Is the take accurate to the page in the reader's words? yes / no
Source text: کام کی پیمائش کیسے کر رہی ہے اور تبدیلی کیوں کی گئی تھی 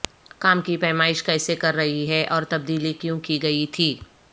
yes